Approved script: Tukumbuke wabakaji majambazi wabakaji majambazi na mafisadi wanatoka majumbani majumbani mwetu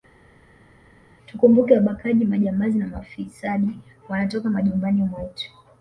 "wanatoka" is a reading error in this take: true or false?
false